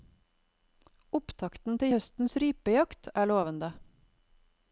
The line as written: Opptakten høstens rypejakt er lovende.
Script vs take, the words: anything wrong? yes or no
yes